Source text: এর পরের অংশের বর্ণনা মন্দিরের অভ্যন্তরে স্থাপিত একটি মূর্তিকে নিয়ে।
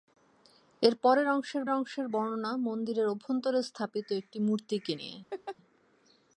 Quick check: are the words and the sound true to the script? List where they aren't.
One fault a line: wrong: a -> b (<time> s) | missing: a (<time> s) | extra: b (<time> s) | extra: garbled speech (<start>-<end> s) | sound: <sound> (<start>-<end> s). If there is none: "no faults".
extra: অংশের (1.7 s)
sound: laugh (5.3-5.6 s)